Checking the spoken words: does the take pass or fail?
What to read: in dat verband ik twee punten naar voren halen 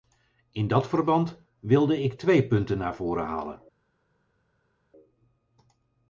fail